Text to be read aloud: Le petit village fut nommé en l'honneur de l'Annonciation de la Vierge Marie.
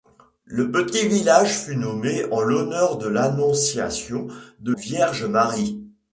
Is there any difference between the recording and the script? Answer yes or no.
yes